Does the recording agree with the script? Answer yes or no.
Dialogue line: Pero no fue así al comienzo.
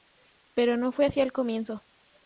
yes